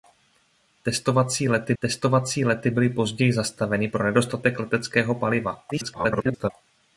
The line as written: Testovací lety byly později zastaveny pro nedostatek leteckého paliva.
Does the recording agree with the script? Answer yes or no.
no